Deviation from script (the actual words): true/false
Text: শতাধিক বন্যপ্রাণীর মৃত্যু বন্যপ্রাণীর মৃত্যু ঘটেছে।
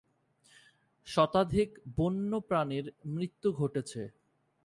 true